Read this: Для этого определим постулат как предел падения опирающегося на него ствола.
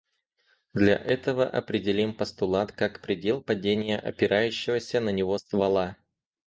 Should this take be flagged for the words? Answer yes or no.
no